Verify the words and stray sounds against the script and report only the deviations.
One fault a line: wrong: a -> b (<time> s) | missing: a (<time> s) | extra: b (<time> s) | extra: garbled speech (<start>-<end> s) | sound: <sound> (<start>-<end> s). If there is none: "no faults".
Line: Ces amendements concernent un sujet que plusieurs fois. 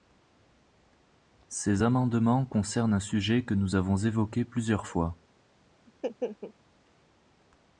extra: nous avons évoqué (3.5 s)
sound: laugh (5.9-6.5 s)